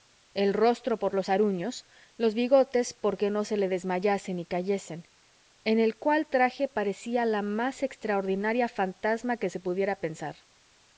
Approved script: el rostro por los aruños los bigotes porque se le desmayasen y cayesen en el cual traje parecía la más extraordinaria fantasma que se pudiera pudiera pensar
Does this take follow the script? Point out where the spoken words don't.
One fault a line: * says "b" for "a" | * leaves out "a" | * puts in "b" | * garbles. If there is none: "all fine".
* puts in "no"
* leaves out "pudiera"